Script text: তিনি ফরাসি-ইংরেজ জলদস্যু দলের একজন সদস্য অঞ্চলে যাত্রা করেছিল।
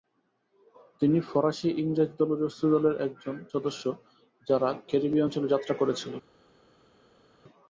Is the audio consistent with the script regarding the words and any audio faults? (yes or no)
no